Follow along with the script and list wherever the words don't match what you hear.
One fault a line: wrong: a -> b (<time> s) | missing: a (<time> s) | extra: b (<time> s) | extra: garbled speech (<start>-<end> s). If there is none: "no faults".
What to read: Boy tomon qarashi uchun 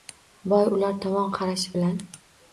extra: ular (0.8 s)
wrong: uchun -> bilan (1.8 s)